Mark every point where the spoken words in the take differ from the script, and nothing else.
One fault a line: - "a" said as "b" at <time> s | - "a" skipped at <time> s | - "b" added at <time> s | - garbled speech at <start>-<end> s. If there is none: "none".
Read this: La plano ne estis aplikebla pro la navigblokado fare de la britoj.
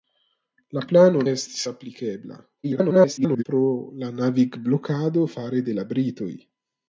- "ne" skipped at 1.2 s
- garbled speech at 2.6-3.4 s